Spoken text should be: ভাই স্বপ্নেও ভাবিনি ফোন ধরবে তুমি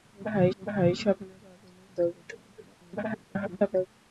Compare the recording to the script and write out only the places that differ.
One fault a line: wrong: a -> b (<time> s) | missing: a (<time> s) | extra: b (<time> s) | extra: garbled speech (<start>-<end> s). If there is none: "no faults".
extra: ভাই (0.6 s)
missing: ফোন (1.8 s)
extra: garbled speech (2.6-3.9 s)